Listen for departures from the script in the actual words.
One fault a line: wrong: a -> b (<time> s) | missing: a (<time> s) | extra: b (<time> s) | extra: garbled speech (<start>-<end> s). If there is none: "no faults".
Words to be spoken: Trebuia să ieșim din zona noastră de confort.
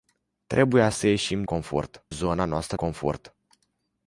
wrong: din -> confort (1.4 s)
missing: de (2.8 s)